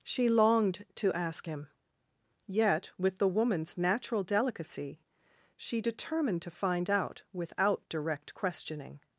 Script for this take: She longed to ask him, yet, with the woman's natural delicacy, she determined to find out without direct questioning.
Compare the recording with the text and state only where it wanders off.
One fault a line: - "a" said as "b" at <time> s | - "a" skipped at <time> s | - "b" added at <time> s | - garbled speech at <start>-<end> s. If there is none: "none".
none